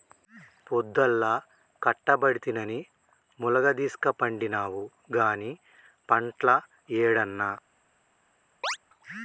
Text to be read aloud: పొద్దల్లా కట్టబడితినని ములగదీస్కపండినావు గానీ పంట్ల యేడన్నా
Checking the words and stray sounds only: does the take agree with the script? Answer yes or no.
no